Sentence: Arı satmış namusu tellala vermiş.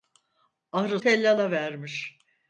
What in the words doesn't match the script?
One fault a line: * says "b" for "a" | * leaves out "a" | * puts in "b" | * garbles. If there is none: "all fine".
* leaves out "satmış namusu"